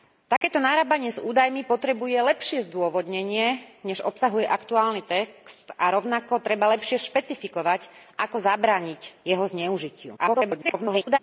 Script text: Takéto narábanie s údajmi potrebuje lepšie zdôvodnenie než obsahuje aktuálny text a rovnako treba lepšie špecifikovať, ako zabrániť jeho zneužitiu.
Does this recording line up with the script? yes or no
no